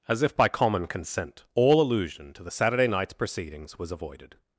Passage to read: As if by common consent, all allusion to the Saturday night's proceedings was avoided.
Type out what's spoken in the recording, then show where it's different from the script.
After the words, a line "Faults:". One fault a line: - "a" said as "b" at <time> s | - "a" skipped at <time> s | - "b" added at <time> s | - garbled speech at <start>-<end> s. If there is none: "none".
As if by common consent, all allusion to the Saturday night's proceedings was avoided.
Faults:
none